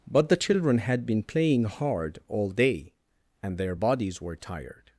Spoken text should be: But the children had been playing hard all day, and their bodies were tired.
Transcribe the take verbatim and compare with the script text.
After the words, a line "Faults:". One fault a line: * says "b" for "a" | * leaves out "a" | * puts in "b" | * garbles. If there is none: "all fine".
But the children had been playing hard all day, and their bodies were tired.
Faults:
all fine